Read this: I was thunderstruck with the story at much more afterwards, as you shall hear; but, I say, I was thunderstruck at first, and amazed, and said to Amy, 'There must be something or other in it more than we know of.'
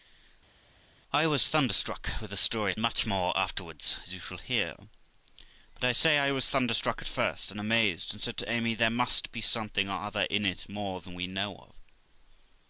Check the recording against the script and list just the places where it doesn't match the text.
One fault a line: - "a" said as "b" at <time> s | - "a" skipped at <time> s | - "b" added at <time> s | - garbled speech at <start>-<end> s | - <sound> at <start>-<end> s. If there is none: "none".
none